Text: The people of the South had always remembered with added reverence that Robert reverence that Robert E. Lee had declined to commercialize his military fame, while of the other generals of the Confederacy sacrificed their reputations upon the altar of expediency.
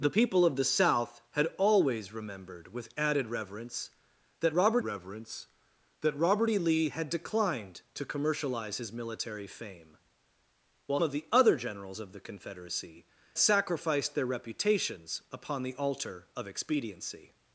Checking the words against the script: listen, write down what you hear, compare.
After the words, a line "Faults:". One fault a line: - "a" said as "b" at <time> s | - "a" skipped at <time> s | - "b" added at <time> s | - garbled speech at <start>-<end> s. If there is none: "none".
The people of the South had always remembered with added reverence that Robert reverence that Robert E. Lee had declined to commercialize his military fame, while of the other generals of the Confederacy sacrificed their reputations upon the altar of expediency.
Faults:
none